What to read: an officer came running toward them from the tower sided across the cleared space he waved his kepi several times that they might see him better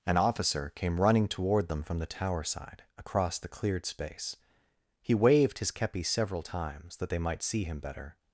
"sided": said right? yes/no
no